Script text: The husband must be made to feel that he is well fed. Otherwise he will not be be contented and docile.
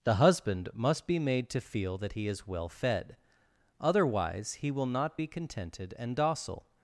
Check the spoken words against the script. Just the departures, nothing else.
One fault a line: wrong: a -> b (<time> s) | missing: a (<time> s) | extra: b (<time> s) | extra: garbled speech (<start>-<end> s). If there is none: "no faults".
missing: be (5.3 s)